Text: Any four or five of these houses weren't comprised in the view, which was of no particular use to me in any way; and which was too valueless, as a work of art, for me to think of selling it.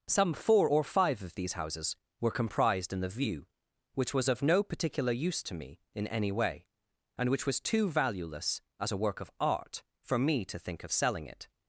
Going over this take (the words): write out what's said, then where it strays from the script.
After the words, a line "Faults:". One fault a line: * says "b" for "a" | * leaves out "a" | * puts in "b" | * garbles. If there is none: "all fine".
Some four or five of these houses were comprised in the view, which was of no particular use to me in any way; and which was too valueless, as a work of art, for me to think of selling it.
Faults:
* says "Some" for "Any"
* says "were" for "weren't"